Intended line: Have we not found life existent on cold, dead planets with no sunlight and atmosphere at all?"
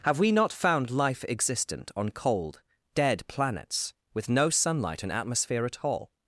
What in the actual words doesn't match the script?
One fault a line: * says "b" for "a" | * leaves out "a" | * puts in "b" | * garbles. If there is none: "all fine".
all fine